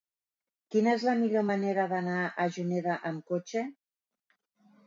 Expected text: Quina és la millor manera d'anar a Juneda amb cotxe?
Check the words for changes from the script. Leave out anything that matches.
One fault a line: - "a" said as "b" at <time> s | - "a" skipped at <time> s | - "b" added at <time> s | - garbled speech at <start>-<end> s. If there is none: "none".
none